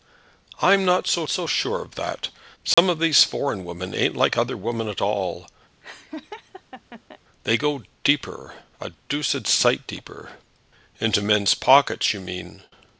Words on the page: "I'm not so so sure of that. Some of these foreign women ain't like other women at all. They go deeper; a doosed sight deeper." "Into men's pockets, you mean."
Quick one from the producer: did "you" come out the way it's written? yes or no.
yes